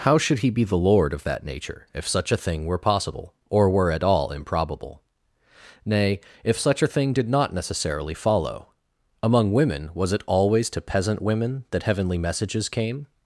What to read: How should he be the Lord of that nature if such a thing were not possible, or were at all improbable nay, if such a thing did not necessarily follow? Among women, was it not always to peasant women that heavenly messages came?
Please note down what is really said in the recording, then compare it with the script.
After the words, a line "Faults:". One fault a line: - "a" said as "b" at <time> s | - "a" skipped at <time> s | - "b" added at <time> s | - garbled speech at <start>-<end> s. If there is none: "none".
How should he be the Lord of that nature if such a thing were possible, or were at all improbable nay, if such a thing did not necessarily follow? Among women, was it always to peasant women that heavenly messages came?
Faults:
- "not" skipped at 2.8 s
- "not" skipped at 10.2 s